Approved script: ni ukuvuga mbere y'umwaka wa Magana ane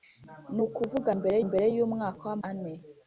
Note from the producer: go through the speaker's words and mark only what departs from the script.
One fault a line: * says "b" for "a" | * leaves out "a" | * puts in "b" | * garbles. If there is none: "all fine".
* puts in "mbere"
* leaves out "Magana"